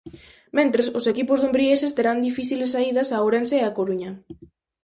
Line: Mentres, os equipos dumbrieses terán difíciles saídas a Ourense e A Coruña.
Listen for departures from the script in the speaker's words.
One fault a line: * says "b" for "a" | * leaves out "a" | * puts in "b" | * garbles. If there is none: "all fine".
all fine